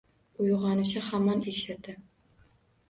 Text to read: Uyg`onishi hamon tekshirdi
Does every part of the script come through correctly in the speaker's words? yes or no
yes